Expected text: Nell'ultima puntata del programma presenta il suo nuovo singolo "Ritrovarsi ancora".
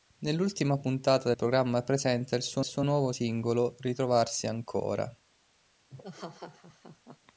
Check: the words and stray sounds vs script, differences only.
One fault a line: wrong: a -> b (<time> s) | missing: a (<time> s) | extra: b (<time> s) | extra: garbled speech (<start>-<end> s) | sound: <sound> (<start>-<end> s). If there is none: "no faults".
missing: del (1.3 s)
extra: suo (2.6 s)
sound: laugh (5.9-7.2 s)